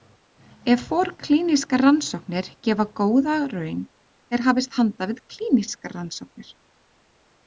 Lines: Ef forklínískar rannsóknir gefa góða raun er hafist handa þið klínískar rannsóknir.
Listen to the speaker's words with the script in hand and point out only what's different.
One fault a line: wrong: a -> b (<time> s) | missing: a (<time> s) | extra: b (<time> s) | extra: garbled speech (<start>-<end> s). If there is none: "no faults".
wrong: þið -> við (5.1 s)